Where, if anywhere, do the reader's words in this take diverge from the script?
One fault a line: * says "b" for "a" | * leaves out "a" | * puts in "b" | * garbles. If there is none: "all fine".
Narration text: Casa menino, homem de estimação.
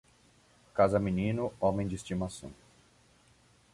all fine